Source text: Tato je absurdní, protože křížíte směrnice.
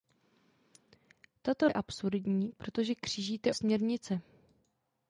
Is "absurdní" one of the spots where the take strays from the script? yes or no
no